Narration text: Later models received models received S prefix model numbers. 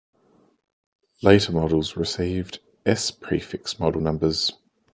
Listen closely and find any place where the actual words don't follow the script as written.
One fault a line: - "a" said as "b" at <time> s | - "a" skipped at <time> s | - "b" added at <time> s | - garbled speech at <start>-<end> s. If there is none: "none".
- "models received" skipped at 2.6 s